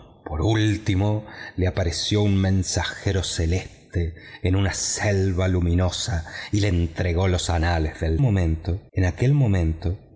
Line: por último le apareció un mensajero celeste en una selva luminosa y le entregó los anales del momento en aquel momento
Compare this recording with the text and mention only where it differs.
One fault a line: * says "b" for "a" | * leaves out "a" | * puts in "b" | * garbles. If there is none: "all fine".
all fine